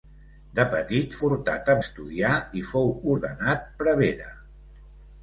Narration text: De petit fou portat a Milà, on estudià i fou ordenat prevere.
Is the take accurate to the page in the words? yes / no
no